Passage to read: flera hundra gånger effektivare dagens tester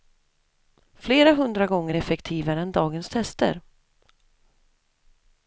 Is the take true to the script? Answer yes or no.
no